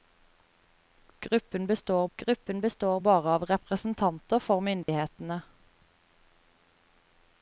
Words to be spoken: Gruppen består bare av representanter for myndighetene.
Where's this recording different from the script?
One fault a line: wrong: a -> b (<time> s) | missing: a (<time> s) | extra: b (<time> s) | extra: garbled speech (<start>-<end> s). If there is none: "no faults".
extra: gruppen består (2.2 s)